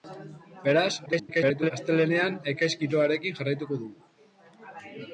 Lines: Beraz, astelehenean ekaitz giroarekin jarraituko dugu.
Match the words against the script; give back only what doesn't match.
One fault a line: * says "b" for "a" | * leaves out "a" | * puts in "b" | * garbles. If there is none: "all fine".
* garbles